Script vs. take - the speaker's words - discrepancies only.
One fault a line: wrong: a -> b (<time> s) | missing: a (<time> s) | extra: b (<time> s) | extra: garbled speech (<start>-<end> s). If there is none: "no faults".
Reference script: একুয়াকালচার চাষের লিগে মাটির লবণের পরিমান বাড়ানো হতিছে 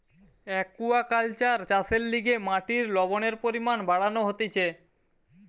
no faults